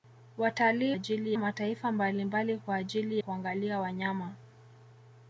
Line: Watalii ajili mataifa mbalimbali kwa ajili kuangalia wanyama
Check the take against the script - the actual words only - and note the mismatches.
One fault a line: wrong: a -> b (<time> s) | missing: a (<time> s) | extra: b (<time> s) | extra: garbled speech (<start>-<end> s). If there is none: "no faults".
no faults